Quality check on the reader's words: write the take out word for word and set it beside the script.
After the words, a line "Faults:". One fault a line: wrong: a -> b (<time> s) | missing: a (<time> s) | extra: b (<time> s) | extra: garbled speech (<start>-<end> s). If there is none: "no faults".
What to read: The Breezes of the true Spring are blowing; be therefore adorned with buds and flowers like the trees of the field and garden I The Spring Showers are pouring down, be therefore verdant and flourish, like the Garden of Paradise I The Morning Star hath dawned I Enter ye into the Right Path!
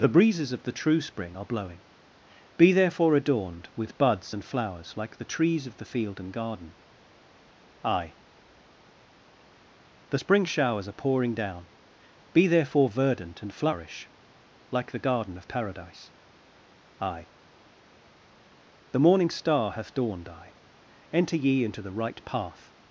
The Breezes of the true Spring are blowing; be therefore adorned with buds and flowers like the trees of the field and garden I The Spring Showers are pouring down, be therefore verdant and flourish, like the Garden of Paradise I The Morning Star hath dawned I Enter ye into the Right Path!
Faults:
no faults